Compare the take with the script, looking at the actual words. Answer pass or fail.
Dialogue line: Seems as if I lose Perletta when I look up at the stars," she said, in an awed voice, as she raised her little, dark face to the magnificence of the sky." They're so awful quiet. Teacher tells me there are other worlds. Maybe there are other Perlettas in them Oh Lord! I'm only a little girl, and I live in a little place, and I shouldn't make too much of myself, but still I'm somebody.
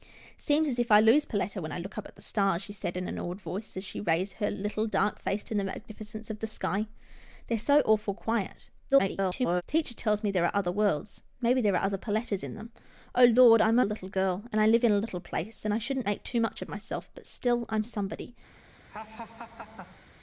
fail